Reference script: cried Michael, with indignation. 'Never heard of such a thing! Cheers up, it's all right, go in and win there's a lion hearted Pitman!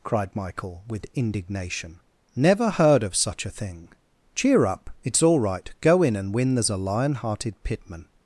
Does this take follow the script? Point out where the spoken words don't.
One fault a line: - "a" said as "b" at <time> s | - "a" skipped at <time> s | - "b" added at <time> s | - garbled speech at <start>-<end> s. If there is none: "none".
- "Cheers" said as "Cheer" at 4.3 s